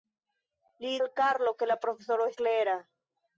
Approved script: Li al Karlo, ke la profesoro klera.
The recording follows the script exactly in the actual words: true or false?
true